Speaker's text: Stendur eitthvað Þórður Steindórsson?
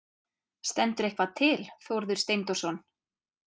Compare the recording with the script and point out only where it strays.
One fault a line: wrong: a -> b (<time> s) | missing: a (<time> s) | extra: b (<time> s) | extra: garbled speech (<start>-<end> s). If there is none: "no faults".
extra: til (1.4 s)